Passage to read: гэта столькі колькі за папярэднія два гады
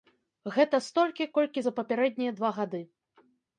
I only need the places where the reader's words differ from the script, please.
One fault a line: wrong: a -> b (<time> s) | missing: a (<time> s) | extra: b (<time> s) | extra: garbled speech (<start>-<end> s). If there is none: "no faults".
no faults